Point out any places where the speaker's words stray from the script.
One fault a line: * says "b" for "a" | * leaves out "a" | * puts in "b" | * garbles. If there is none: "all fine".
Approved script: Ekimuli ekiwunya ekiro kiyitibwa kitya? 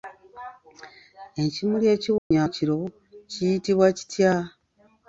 all fine